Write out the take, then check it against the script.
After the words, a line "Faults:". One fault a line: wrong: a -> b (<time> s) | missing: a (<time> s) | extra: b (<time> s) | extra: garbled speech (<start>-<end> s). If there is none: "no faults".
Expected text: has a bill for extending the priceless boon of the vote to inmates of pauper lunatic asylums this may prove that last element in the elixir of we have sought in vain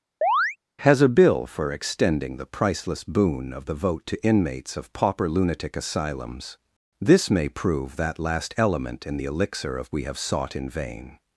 has a bill for extending the priceless boon of the vote to inmates of pauper lunatic asylums this may prove that last element in the elixir of we have sought in vain
Faults:
no faults